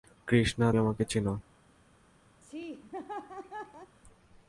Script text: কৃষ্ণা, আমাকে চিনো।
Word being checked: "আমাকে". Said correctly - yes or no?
yes